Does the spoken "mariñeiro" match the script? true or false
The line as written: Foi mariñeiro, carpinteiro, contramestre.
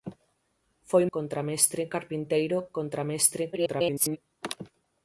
false